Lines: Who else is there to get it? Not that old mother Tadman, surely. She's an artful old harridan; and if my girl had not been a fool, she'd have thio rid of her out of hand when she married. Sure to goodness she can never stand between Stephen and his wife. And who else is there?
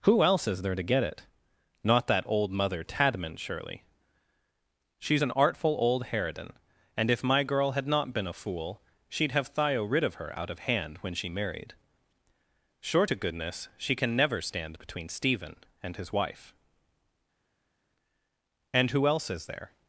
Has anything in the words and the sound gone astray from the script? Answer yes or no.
no